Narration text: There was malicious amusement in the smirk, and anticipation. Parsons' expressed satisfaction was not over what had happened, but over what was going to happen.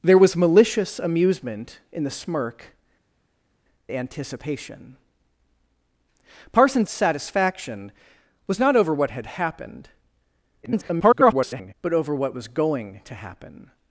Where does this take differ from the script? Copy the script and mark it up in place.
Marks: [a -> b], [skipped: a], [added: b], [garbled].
There was malicious amusement in the smirk, [skipped: and] anticipation. Parsons' [skipped: expressed] satisfaction was not over what had happened, [garbled] but over what was going to happen.